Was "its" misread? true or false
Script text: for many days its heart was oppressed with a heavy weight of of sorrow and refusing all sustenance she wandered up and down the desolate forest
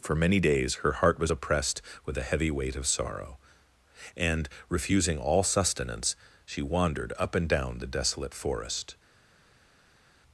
true